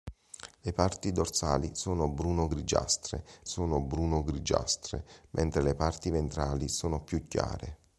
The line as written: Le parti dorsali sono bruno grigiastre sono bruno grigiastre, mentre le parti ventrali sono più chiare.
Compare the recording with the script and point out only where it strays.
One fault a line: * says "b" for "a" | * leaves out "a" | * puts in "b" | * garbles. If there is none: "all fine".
all fine